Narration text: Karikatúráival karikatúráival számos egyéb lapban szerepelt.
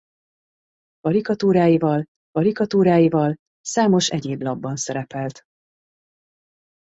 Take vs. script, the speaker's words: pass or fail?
pass